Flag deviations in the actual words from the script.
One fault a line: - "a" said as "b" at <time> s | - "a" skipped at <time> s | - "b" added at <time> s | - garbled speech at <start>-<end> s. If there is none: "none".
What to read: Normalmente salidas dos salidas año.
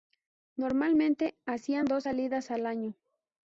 - "salidas" said as "hacían" at 1.5 s
- "al" added at 2.5 s